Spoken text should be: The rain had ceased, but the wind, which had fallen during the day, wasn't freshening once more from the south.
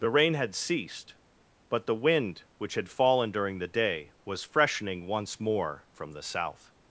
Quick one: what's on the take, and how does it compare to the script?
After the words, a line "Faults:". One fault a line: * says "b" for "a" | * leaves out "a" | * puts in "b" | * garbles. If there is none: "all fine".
The rain had ceased, but the wind, which had fallen during the day, was freshening once more from the south.
Faults:
* says "was" for "wasn't"